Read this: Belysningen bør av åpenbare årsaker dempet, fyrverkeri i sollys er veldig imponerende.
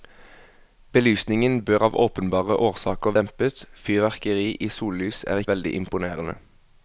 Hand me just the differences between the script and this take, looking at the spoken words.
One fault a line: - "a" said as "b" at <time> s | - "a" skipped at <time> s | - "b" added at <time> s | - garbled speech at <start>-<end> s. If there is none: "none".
none